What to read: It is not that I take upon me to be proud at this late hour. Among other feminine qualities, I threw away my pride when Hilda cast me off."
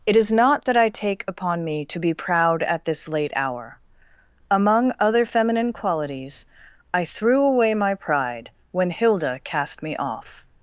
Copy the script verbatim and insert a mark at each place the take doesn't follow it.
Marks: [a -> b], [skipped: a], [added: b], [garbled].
It is not that I take upon me to be proud at this late hour. Among other feminine qualities, I threw away my pride when Hilda cast me off."